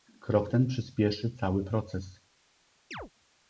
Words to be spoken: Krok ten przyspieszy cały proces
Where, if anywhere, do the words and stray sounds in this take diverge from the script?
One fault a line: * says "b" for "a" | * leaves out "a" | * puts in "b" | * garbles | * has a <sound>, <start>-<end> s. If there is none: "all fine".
* has a chirp, 2.9-3.1 s